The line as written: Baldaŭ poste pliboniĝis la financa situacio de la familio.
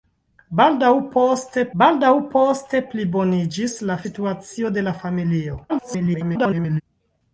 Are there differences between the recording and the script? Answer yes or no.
yes